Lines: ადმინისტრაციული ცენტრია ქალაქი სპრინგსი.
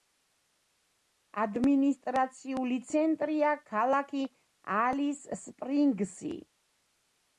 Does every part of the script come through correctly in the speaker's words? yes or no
no